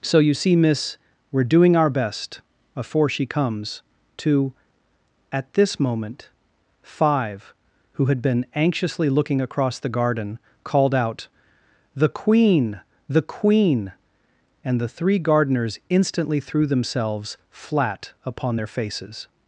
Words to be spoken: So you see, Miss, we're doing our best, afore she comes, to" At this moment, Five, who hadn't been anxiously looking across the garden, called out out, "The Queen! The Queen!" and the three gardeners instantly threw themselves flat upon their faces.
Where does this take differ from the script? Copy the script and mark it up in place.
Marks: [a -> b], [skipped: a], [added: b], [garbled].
So you see, Miss, we're doing our best, afore she comes, to" At this moment, Five, who [hadn't -> had] been anxiously looking across the garden, called out [skipped: out,] "The Queen! The Queen!" and the three gardeners instantly threw themselves flat upon their faces.